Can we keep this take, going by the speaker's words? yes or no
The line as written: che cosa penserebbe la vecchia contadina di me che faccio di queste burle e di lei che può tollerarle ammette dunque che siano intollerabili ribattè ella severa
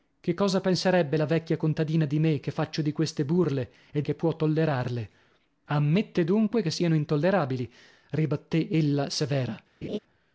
no